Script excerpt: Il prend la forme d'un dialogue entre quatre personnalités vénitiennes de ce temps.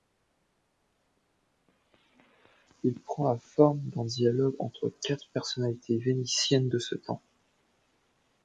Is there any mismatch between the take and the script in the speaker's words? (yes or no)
no